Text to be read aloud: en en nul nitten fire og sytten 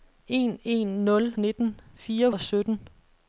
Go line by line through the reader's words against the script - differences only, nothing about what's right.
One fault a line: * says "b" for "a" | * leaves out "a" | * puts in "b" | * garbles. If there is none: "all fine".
all fine